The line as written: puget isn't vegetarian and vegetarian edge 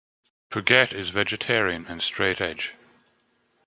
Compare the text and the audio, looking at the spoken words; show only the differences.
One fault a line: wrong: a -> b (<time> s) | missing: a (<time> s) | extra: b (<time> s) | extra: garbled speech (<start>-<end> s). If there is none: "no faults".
wrong: isn't -> is (0.9 s)
wrong: vegetarian -> straight (2.0 s)